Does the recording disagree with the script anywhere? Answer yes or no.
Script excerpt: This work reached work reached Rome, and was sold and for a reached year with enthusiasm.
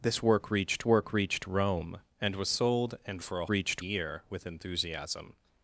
no